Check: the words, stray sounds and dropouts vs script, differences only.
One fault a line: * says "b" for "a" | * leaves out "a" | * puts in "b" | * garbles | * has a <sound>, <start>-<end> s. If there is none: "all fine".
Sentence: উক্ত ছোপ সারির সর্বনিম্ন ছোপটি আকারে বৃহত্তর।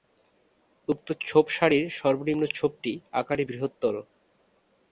all fine